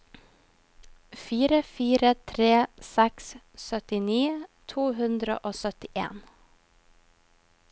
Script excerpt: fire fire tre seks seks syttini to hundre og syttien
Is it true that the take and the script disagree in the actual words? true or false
true